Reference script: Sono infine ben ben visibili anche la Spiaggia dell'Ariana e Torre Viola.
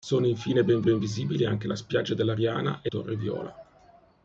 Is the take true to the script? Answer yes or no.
yes